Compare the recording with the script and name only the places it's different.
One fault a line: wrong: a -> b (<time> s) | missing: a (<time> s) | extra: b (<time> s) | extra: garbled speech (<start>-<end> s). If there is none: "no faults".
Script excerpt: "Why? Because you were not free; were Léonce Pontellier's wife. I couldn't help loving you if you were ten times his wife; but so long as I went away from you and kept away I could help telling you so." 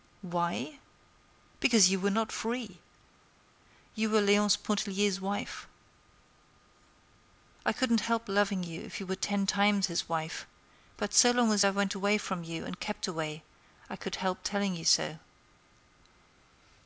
extra: you (3.9 s)